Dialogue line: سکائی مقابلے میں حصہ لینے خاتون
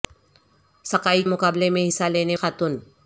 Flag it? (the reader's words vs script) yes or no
no